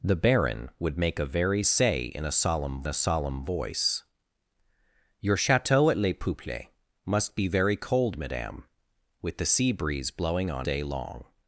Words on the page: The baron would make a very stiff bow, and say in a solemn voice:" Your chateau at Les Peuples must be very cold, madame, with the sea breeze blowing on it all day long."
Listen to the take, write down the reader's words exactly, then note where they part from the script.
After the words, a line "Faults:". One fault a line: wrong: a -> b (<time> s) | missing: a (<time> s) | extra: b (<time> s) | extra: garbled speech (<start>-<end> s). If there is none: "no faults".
The baron would make a very say in a solemn a solemn voice:" Your chateau at Les Peuples must be very cold, madame, with the sea breeze blowing on day long."
Faults:
missing: stiff bow and (1.6 s)
extra: a solemn (2.9 s)
missing: it all (10.7 s)